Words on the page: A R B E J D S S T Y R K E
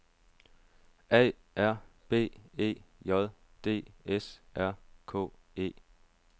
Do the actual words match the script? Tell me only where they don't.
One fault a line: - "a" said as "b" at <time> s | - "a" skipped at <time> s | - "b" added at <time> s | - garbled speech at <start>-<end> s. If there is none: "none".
- "S T Y" skipped at 4.4 s